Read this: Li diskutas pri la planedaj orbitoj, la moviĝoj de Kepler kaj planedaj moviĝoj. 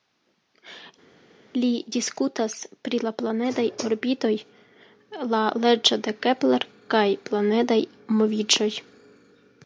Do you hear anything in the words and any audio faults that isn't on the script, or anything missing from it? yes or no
yes